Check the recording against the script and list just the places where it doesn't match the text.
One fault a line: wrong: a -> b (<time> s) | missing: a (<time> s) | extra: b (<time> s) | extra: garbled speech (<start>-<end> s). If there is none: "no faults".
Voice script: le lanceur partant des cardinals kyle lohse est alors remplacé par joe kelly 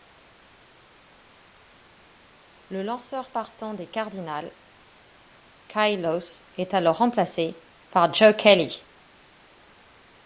no faults